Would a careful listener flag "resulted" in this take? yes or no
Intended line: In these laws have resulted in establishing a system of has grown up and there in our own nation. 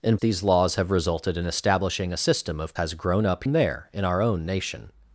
no